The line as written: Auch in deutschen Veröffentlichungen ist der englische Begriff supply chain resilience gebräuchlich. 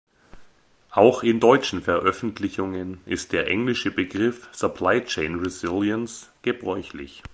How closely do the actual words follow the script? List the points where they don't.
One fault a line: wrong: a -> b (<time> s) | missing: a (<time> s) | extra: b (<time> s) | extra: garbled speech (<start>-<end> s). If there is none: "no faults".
no faults